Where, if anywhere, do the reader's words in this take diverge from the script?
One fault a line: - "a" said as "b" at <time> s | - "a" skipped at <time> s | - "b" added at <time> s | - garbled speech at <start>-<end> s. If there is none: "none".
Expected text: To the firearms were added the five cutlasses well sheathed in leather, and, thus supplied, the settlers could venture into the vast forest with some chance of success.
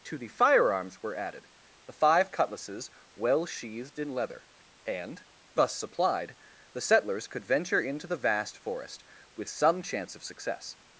none